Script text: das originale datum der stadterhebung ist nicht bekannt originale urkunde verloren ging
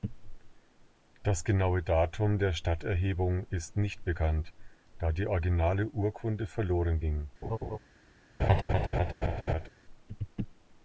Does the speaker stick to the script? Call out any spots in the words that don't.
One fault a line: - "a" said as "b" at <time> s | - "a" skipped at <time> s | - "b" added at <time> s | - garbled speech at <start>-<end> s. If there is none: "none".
- "originale" said as "genaue" at 1.4 s
- "da die" added at 5.0 s